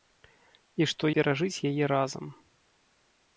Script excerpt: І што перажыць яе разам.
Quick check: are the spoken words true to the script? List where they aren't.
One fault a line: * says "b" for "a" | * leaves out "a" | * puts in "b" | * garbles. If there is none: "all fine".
all fine